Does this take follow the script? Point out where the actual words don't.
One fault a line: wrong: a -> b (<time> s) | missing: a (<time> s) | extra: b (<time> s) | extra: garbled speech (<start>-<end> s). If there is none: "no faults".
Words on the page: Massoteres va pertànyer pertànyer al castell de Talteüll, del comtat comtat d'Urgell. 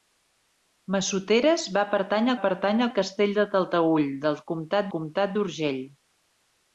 no faults